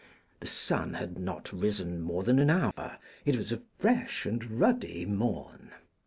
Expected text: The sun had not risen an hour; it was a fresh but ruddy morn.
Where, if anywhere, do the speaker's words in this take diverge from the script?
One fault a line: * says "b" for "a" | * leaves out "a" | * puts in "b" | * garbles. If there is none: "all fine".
* puts in "more than"
* says "and" for "but"